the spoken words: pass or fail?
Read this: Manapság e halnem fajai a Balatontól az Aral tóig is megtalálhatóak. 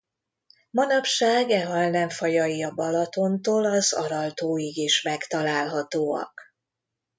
pass